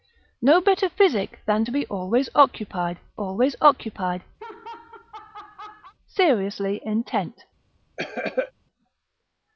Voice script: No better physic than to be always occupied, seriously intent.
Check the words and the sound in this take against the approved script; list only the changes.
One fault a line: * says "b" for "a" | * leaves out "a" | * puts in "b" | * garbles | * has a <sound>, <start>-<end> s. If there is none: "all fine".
* puts in "always occupied"
* has a laugh, 4.4-5.9 s
* has a cough, 8.0-8.5 s